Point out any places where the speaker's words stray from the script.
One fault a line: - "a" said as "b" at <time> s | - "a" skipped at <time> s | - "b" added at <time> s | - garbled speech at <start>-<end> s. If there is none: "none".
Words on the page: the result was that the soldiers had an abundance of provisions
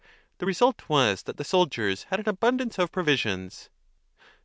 none